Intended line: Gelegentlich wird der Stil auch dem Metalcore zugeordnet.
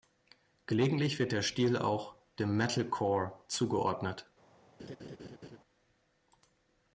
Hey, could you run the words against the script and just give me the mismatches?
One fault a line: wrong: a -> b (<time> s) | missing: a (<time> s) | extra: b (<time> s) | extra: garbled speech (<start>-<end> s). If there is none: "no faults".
no faults